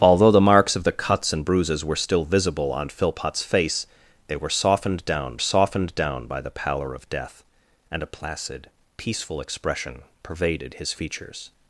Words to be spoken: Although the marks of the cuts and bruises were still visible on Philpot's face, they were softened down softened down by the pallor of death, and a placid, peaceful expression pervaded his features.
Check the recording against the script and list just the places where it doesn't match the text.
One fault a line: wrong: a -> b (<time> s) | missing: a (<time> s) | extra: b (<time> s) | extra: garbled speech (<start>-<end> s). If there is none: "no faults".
no faults